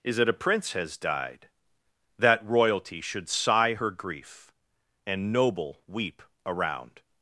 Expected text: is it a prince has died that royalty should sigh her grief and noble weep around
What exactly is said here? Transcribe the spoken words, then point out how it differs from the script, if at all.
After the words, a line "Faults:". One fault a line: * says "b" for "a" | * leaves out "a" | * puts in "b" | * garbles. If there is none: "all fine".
is it a prince has died that royalty should sigh her grief and noble weep around
Faults:
all fine